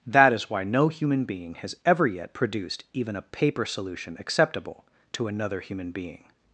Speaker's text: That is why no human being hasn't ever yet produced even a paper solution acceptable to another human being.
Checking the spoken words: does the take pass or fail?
fail